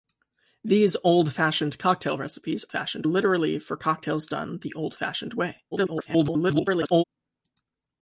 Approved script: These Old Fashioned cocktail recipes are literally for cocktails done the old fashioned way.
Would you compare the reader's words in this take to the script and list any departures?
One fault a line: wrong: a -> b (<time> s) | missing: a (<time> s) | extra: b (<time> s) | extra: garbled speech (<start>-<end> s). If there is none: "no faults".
wrong: are -> fashioned (2.7 s)
extra: garbled speech (5.7-7.0 s)